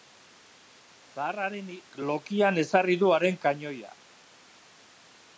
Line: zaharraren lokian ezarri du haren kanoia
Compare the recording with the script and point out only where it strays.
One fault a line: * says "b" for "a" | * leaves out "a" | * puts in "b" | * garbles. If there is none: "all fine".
all fine